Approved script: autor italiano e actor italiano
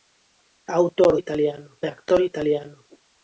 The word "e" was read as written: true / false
true